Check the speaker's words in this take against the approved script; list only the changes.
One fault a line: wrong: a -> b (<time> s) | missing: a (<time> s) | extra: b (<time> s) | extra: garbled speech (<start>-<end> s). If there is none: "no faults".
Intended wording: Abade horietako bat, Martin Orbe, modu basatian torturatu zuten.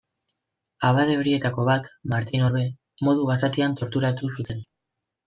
no faults